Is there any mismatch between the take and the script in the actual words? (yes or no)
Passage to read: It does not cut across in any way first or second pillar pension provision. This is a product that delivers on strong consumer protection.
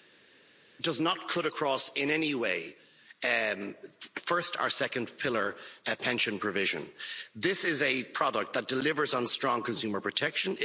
no